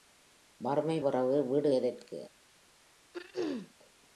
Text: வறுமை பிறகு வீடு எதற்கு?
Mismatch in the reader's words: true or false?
false